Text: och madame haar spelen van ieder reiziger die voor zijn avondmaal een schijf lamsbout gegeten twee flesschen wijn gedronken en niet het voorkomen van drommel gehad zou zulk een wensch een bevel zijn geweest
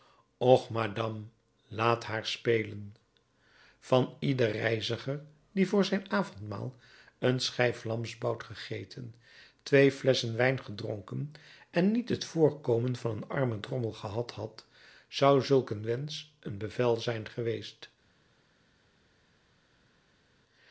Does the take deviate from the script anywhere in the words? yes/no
yes